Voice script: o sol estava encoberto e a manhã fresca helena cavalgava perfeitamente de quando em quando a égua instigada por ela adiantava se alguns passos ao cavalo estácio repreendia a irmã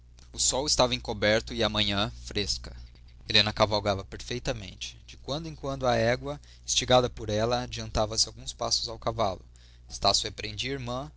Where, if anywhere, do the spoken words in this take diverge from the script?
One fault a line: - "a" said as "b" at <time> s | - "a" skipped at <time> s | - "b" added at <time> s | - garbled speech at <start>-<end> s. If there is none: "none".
none